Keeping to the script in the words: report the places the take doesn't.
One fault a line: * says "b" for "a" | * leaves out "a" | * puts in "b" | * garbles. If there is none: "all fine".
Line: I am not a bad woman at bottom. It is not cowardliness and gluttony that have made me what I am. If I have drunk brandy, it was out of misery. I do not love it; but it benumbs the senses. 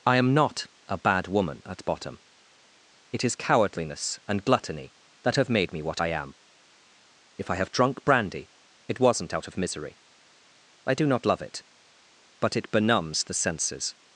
* leaves out "not"
* says "wasn't" for "was"